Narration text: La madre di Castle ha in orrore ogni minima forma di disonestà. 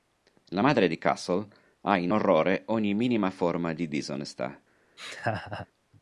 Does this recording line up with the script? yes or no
yes